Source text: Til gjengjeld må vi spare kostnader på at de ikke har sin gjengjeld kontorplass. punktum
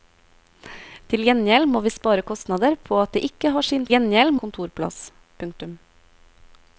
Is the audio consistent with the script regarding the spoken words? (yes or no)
yes